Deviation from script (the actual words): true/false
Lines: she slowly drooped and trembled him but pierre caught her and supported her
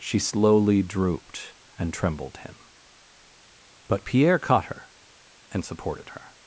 false